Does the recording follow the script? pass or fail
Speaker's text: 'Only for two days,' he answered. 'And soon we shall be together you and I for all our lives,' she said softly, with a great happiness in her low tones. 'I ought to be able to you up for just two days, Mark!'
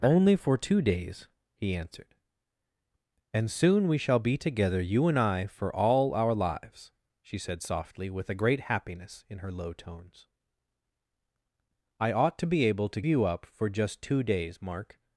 pass